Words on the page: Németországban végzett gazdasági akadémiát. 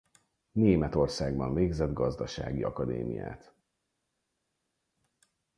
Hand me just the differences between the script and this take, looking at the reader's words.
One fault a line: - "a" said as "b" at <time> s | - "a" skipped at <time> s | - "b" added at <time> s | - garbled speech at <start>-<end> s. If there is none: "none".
none